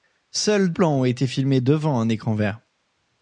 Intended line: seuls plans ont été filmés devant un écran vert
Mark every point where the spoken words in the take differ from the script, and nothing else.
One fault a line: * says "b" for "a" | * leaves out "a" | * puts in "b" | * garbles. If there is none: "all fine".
all fine